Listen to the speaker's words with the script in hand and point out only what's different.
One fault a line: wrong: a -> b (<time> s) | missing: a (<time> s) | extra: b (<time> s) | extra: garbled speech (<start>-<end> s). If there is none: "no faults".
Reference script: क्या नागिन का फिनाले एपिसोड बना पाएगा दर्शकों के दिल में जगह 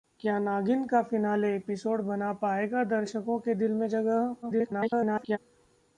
extra: garbled speech (4.4-5.4 s)